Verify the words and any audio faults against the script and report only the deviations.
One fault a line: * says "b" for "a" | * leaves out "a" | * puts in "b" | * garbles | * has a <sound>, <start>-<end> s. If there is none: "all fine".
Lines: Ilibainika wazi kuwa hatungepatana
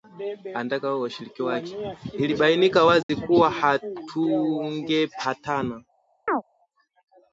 * has a dropout, 3.0-3.1 s
* has a chirp, 6.3-6.4 s